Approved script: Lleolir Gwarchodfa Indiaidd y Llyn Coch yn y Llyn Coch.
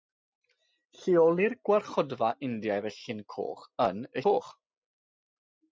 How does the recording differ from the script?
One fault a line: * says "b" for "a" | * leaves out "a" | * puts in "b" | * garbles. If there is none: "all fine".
* leaves out "Llyn"